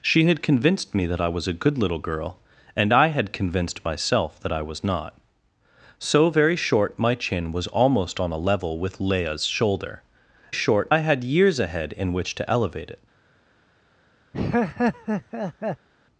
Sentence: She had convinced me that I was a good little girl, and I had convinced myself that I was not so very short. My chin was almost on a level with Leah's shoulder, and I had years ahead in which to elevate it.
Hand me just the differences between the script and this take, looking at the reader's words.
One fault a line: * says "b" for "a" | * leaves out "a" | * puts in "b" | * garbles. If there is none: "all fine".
* says "short" for "and"